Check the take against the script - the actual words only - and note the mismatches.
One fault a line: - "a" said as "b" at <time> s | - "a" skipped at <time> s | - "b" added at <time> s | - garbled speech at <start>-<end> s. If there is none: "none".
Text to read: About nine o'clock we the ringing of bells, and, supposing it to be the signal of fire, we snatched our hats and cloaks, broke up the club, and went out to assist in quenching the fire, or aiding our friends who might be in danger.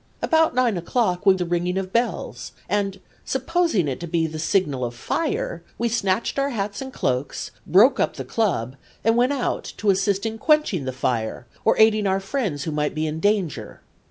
none